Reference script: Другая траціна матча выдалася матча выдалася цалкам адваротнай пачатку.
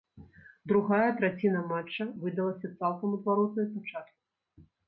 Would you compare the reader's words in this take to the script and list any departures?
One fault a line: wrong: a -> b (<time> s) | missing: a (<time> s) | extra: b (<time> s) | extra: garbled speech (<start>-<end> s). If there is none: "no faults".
missing: матча выдалася (2.7 s)